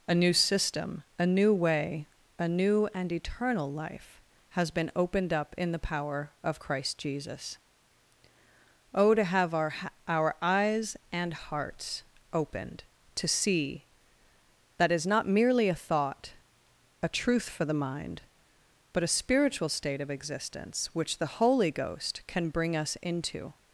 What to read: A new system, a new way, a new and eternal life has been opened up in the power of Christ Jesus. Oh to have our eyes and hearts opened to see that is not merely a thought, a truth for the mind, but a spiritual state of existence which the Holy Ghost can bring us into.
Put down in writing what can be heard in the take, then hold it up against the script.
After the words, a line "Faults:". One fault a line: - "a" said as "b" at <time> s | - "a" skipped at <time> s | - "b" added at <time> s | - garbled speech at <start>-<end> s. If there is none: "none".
A new system, a new way, a new and eternal life has been opened up in the power of Christ Jesus. Oh to have our our eyes and hearts opened to see that is not merely a thought, a truth for the mind, but a spiritual state of existence which the Holy Ghost can bring us into.
Faults:
- "our" added at 10.1 s